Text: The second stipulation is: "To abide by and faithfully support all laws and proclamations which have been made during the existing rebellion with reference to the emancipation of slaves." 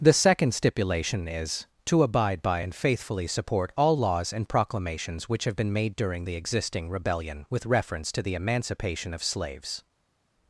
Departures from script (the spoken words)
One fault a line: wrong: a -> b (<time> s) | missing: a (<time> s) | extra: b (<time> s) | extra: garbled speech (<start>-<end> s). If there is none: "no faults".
no faults